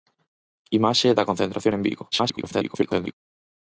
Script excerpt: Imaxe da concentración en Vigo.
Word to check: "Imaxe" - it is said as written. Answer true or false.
true